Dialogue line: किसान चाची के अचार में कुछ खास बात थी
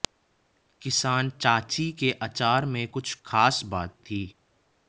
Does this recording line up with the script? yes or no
yes